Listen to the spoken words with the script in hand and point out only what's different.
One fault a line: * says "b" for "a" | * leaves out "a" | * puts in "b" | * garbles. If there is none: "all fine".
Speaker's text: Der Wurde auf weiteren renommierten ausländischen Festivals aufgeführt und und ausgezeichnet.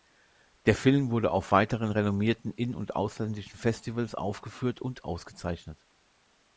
* puts in "Film"
* puts in "in und"
* leaves out "und"